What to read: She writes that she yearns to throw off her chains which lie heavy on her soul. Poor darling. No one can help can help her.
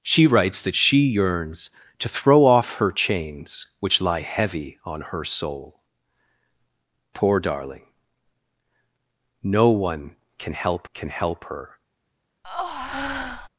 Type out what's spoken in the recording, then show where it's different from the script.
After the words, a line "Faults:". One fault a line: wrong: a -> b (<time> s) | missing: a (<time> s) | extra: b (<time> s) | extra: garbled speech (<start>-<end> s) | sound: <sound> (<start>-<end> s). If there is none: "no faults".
She writes that she yearns to throw off her chains which lie heavy on her soul. Poor darling. No one can help can help her.
Faults:
sound: breath (12.4-13.5 s)